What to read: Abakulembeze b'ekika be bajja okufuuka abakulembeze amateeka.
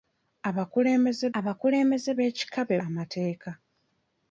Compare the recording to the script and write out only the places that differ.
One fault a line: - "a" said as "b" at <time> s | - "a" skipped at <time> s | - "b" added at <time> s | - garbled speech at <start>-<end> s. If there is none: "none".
- "abakulembeze" added at 1.4 s
- "bajja okufuuka abakulembeze" skipped at 2.8 s